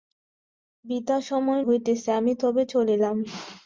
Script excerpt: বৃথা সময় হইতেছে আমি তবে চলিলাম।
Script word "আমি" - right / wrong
right